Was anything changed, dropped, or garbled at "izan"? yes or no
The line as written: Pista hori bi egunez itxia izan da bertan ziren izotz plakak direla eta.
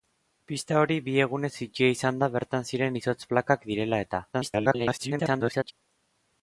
no